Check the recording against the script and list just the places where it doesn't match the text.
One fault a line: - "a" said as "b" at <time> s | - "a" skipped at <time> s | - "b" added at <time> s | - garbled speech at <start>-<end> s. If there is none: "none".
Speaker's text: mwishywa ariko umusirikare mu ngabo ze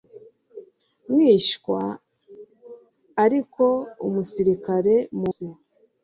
- "ngabo" skipped at 5.3 s